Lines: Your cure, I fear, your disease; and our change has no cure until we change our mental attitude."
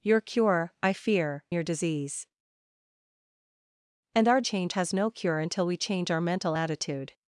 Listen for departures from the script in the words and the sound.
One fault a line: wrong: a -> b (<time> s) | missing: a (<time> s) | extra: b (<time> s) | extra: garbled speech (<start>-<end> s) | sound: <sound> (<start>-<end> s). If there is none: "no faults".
no faults